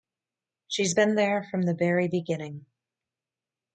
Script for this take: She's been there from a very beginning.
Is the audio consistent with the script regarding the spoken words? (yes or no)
no